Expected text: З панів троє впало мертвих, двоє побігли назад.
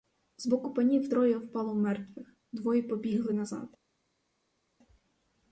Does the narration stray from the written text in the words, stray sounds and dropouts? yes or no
yes